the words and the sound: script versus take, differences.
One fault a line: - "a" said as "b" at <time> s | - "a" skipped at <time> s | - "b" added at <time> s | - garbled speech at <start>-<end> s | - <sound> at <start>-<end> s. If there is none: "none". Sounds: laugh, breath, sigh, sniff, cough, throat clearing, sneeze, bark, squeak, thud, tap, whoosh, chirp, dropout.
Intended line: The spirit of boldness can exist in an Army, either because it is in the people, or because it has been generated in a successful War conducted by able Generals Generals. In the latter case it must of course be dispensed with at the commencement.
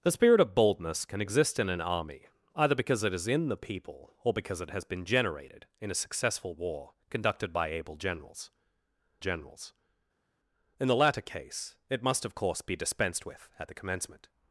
none